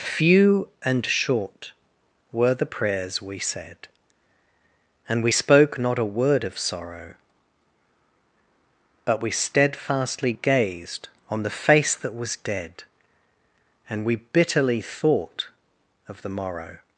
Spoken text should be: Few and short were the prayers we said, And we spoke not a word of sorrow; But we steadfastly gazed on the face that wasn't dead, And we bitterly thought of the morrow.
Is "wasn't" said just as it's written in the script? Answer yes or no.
no